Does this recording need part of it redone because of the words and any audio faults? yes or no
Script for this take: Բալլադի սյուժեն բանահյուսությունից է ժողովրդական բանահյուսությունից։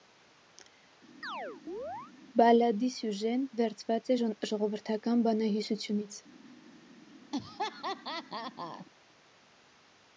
yes